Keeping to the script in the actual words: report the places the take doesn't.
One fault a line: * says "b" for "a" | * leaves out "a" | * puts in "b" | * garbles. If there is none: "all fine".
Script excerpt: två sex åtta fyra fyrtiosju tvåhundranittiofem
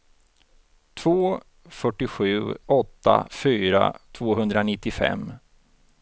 * says "fyrtiosju" for "sex"
* leaves out "fyrtiosju"